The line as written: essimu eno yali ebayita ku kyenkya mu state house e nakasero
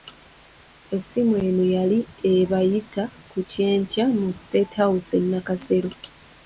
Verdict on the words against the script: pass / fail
pass